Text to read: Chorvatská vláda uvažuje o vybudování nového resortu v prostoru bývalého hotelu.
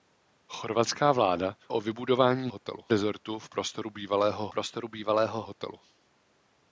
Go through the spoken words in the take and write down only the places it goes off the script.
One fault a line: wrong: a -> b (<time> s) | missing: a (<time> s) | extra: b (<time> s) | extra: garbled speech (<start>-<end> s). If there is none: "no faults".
missing: uvažuje (1.6 s)
wrong: nového -> hotelu (2.5 s)
extra: prostoru bývalého (4.5 s)